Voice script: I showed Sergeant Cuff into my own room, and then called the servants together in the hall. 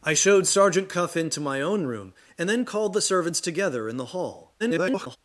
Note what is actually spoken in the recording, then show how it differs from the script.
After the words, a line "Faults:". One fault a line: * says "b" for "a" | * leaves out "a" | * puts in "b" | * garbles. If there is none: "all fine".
I showed Sergeant Cuff into my own room, and then called the servants together in the hall. [garbled]
Faults:
* garbles